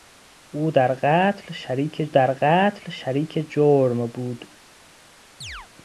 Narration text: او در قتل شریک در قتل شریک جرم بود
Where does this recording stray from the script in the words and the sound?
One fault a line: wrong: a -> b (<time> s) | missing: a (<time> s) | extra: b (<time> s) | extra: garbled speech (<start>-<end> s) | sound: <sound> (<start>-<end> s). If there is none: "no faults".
sound: chirp (5.4-5.7 s)